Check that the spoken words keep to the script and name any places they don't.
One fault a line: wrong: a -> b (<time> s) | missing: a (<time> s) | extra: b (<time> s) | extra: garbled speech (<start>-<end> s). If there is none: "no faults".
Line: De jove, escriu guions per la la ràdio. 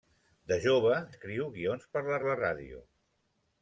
no faults